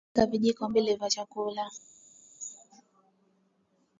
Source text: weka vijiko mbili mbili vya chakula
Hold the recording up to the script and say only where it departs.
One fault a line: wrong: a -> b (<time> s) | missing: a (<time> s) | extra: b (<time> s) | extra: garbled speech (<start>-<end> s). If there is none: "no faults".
missing: mbili (0.9 s)